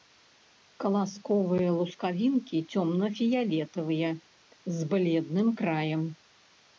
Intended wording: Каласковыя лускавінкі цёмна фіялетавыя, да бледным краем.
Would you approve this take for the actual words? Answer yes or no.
no